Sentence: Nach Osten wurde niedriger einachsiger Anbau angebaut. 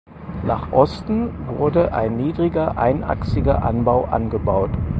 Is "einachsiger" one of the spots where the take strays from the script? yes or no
no